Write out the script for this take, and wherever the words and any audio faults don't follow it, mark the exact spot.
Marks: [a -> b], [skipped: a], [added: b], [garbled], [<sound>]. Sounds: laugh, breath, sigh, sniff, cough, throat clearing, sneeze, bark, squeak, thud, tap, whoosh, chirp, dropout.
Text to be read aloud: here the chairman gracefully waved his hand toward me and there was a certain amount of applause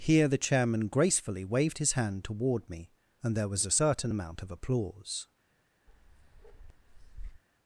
here the chairman gracefully waved his hand toward me and there was a certain amount of applause [bark]